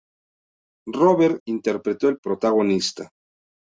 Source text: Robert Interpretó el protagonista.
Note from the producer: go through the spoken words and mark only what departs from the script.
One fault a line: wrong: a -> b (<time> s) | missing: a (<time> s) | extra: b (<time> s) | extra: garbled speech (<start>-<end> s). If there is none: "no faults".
no faults